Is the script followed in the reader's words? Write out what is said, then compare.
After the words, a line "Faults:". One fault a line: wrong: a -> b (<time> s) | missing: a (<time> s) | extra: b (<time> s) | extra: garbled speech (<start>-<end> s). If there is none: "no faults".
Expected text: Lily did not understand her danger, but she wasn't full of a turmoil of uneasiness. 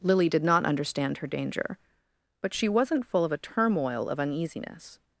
Lily did not understand her danger, but she wasn't full of a turmoil of uneasiness.
Faults:
no faults